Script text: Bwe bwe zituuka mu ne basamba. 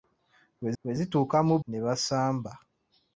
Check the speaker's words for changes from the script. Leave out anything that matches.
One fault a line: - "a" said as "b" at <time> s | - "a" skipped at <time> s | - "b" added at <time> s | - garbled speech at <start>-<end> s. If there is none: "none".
none